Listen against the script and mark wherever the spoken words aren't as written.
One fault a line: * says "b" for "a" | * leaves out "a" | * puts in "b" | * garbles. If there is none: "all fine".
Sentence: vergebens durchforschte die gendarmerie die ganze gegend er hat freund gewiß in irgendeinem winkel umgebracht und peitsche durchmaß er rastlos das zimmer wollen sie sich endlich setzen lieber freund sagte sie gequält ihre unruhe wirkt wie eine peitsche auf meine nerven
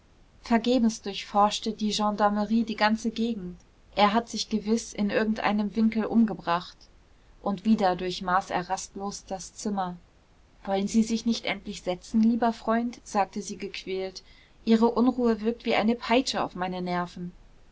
* says "sich" for "freund"
* says "wieder" for "peitsche"
* puts in "nicht"